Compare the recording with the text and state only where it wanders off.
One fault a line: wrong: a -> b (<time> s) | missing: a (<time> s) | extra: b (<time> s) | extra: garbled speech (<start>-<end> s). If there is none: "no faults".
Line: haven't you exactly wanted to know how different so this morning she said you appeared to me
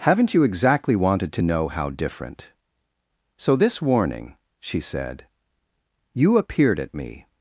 wrong: morning -> warning (3.8 s)
wrong: to -> at (6.8 s)